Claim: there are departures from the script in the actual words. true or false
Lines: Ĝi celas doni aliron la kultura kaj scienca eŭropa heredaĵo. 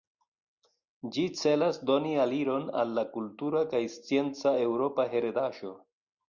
true